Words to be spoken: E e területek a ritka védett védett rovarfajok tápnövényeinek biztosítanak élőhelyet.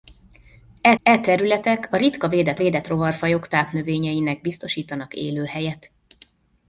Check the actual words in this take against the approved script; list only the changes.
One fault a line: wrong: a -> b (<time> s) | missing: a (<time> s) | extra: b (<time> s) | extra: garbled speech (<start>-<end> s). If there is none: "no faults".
no faults